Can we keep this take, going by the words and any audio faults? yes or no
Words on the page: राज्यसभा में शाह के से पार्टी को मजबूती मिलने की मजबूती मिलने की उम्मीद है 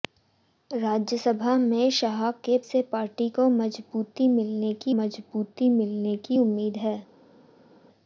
yes